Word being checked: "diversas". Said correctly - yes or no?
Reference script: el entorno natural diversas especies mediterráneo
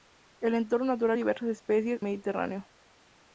yes